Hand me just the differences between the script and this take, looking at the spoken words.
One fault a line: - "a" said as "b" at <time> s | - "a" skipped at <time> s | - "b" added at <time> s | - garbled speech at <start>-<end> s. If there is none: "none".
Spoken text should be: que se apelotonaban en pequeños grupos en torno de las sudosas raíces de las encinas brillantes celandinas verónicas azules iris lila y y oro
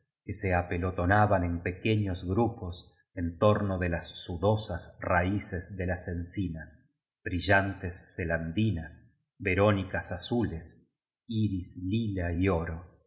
- "y" skipped at 12.5 s